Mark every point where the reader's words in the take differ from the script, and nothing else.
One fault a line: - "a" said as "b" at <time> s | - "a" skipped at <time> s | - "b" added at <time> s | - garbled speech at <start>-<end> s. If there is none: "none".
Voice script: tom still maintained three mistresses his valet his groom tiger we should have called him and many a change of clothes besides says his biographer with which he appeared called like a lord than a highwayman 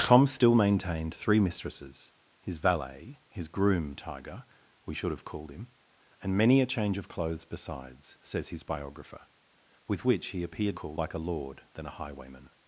none